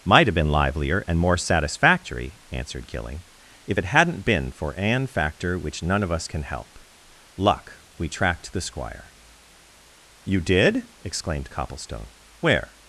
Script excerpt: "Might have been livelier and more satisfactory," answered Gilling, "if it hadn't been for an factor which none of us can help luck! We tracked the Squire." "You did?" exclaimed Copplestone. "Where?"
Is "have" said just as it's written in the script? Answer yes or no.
yes